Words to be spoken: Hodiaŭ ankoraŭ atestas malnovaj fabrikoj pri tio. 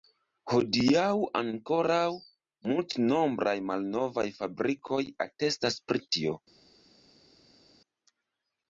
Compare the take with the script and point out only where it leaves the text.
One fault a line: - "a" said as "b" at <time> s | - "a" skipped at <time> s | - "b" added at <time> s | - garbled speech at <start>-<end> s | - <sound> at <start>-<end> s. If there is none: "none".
- "atestas" said as "multnombraj" at 2.7 s
- "atestas" added at 5.3 s